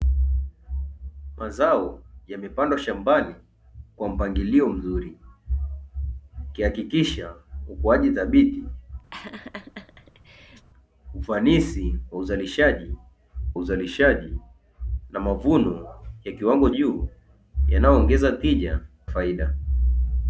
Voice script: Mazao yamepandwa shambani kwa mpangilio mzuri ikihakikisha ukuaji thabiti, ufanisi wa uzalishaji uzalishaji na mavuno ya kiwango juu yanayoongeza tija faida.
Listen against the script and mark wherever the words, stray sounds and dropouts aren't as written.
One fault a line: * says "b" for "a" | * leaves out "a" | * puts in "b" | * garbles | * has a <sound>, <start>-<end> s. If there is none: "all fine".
* has a laugh, 9.1-10.7 s